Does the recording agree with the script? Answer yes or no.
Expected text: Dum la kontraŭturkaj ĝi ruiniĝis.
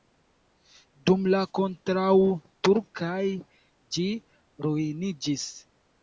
yes